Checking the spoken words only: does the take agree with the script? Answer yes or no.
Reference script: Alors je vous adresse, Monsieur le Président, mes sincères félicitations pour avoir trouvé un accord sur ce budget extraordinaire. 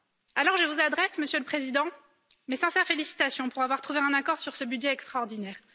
yes